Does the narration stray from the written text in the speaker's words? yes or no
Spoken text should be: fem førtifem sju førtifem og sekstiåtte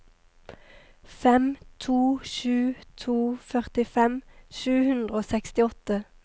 yes